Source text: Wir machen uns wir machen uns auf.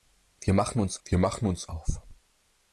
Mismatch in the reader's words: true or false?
false